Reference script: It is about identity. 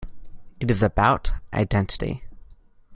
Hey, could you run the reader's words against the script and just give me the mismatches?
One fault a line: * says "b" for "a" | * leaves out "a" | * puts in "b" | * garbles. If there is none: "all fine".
all fine